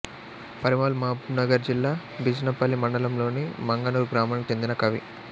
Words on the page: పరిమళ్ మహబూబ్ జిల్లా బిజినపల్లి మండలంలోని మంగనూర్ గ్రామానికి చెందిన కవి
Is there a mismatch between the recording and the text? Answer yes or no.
yes